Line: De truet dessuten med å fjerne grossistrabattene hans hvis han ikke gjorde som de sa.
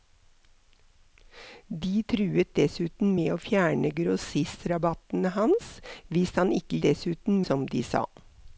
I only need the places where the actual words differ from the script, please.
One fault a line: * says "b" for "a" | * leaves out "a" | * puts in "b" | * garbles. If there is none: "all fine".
* says "dessuten" for "gjorde"